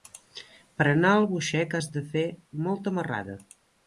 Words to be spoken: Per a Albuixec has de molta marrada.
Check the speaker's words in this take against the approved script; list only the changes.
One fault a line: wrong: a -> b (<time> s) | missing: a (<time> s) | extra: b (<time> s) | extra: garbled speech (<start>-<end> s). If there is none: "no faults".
extra: anar (0.9 s)
extra: fer (2.1 s)